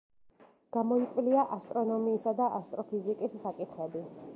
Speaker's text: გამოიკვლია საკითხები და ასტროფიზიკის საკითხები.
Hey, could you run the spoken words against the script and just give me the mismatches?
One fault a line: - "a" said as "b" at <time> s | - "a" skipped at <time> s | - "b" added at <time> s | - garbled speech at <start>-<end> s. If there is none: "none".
- "საკითხები" said as "ასტრონომიისა" at 1.6 s